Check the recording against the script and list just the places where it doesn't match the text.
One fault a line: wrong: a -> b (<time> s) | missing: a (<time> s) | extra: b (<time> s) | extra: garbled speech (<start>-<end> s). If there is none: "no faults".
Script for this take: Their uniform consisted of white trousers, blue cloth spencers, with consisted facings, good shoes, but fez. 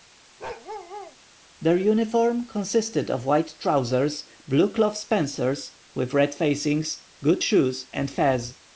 wrong: consisted -> red (6.1 s)
wrong: but -> and (7.9 s)